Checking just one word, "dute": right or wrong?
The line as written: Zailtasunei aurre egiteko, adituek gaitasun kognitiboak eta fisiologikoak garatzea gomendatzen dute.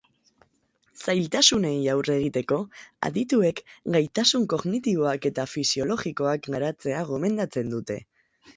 right